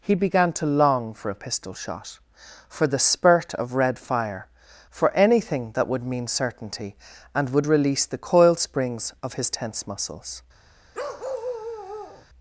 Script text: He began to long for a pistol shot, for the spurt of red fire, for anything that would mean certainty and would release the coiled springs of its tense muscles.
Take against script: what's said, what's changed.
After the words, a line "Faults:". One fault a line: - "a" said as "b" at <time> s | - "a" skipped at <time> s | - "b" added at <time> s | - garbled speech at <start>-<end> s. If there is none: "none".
He began to long for a pistol shot, for the spurt of red fire, for anything that would mean certainty and would release the coiled springs of his tense muscles.
Faults:
- "its" said as "his" at 9.3 s